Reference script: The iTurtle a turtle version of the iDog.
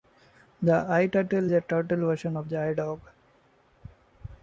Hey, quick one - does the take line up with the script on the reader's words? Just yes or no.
yes